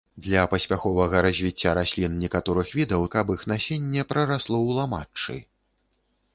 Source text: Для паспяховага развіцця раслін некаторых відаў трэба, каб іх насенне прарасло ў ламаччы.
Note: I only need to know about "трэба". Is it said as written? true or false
false